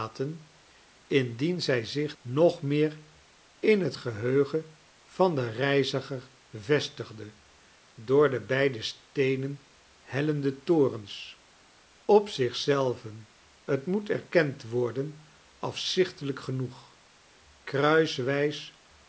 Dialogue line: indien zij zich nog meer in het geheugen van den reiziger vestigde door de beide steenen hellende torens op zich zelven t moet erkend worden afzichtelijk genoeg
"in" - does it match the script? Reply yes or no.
yes